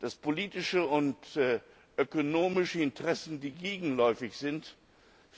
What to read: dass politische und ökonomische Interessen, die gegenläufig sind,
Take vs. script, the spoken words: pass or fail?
pass